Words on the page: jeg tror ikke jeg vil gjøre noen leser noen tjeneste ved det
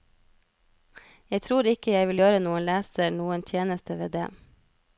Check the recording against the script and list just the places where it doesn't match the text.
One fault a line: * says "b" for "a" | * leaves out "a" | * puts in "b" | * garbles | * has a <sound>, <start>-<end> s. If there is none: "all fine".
all fine